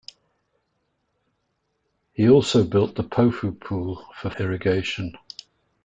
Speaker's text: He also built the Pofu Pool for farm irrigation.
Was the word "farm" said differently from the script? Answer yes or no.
yes